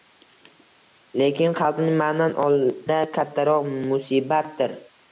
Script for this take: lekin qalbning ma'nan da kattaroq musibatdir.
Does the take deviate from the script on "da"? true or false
false